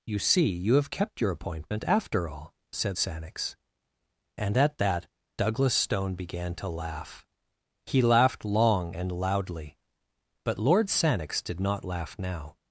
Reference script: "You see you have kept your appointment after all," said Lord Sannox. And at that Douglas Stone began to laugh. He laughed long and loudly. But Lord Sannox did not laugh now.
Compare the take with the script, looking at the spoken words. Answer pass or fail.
fail